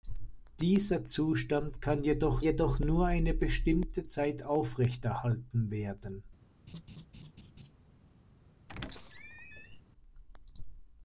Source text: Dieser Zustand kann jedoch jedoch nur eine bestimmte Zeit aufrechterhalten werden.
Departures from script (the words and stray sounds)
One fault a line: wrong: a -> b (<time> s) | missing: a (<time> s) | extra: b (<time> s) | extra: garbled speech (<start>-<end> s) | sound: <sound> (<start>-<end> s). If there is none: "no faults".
sound: laugh (6.7-7.7 s)
sound: squeak (8.7-9.8 s)